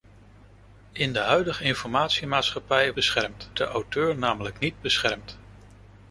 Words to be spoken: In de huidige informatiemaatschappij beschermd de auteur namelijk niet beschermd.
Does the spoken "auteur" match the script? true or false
true